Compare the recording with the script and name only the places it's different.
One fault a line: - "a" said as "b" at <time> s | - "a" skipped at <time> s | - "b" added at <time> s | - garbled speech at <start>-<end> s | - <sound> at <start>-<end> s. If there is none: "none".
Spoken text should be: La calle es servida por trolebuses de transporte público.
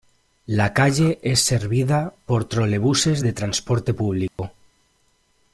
- dropout at 4.3-4.4 s